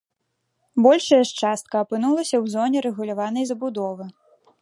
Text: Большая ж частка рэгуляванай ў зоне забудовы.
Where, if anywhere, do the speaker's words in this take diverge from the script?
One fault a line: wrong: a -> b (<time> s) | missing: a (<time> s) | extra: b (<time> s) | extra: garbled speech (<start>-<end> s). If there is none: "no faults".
wrong: рэгуляванай -> апынулася (1.9 s)
extra: рэгуляванай (2.9 s)